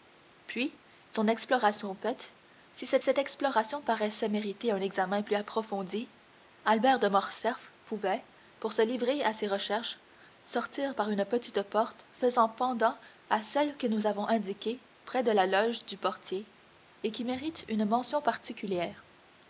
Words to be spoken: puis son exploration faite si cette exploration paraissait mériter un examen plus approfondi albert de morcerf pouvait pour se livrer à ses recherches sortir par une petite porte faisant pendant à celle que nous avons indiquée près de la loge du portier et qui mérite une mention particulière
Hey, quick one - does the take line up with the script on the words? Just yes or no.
no